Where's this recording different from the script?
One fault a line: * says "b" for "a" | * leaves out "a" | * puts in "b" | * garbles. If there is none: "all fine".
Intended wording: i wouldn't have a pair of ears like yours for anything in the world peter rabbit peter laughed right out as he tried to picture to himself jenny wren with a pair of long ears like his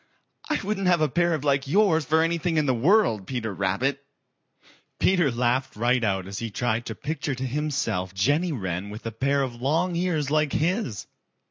* leaves out "ears"